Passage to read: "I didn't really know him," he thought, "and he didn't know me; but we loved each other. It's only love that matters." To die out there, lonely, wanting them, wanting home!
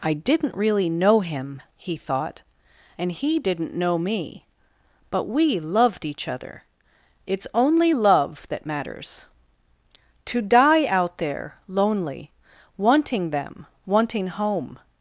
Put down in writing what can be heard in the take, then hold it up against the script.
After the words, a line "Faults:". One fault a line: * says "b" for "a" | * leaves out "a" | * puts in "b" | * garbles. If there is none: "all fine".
"I didn't really know him," he thought, "and he didn't know me; but we loved each other. It's only love that matters." To die out there, lonely, wanting them, wanting home!
Faults:
all fine